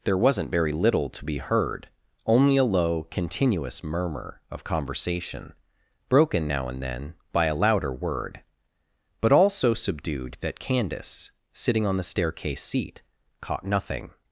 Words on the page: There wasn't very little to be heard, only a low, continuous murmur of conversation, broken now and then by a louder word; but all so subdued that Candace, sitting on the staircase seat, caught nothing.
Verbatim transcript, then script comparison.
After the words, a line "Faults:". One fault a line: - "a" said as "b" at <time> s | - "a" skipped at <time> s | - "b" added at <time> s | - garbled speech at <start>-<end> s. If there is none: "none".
There wasn't very little to be heard, only a low, continuous murmur of conversation, broken now and then by a louder word; but all so subdued that Candace, sitting on the staircase seat, caught nothing.
Faults:
none